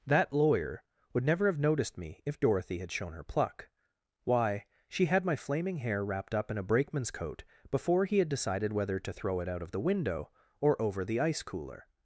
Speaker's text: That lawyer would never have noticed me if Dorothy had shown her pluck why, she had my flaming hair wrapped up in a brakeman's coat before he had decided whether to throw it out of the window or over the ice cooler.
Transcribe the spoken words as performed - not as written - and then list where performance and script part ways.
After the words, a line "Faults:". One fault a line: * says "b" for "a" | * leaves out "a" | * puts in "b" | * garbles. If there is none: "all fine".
That lawyer would never have noticed me if Dorothy had shown her pluck why, she had my flaming hair wrapped up in a brakeman's coat before he had decided whether to throw it out of the window or over the ice cooler.
Faults:
all fine